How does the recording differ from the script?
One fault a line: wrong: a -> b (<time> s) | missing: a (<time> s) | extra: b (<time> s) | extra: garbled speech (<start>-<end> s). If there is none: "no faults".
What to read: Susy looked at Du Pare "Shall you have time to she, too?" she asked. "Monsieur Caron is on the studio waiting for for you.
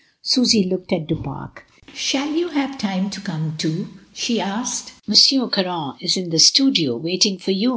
wrong: she -> come (3.2 s)
wrong: on -> in (6.2 s)
missing: for (7.5 s)